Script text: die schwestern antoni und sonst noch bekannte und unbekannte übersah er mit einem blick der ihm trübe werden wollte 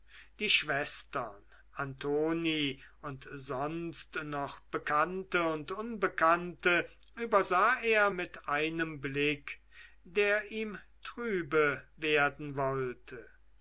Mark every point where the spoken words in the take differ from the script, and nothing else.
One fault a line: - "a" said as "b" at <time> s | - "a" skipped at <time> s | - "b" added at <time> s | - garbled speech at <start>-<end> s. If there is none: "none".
none